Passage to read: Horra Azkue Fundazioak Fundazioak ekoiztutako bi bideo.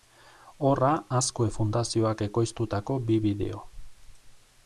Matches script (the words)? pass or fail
fail